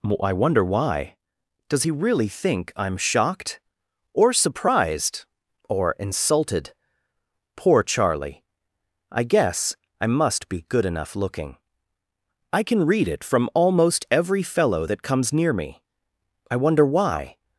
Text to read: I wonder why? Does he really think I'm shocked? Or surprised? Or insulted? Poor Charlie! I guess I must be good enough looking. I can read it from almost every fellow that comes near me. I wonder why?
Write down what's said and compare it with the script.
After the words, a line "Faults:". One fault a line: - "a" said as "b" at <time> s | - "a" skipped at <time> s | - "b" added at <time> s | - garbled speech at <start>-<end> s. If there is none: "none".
I wonder why? Does he really think I'm shocked? Or surprised? Or insulted? Poor Charlie! I guess I must be good enough looking. I can read it from almost every fellow that comes near me. I wonder why?
Faults:
none